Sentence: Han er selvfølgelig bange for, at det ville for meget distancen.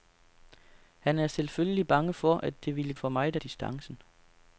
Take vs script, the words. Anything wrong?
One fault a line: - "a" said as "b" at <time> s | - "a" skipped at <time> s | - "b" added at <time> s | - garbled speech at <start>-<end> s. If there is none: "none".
none